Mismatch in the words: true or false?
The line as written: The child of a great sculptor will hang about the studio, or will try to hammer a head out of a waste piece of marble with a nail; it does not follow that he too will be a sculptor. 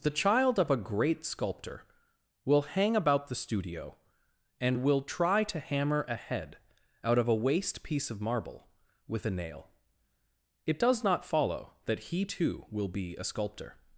true